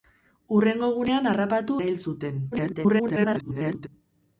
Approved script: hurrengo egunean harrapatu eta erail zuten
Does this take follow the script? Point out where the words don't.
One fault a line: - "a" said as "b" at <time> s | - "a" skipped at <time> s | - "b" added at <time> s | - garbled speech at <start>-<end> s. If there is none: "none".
- "eta" skipped at 1.8 s
- garbled speech at 2.5-3.9 s